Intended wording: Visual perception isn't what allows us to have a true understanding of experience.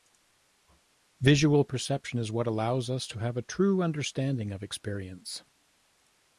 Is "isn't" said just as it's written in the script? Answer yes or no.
no